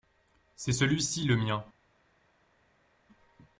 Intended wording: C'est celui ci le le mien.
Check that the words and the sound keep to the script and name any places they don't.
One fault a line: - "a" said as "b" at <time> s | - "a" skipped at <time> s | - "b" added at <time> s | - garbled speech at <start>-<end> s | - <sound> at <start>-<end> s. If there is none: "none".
- "le" skipped at 1.4 s